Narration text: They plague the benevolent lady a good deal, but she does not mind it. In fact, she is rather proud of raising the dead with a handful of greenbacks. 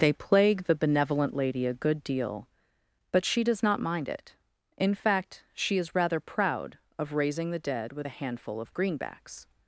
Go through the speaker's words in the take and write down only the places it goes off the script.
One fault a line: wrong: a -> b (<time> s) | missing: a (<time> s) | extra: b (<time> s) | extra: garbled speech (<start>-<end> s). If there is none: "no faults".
no faults